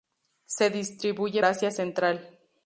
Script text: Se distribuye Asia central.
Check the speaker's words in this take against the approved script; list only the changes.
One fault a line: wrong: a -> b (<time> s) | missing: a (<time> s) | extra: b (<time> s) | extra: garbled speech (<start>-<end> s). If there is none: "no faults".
no faults